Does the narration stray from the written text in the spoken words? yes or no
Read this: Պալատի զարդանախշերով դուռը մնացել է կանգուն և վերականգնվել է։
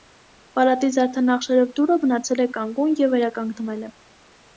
no